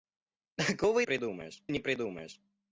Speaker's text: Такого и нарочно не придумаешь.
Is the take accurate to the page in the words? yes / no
no